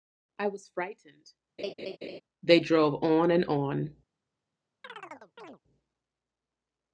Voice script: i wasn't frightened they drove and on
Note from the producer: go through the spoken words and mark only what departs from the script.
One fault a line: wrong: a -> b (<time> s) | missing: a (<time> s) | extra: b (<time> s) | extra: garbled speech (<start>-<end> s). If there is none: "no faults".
wrong: wasn't -> was (0.5 s)
extra: on (3.0 s)